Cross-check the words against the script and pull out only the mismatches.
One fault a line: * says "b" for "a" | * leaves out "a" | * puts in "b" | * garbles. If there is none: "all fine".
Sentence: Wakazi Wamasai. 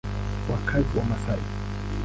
all fine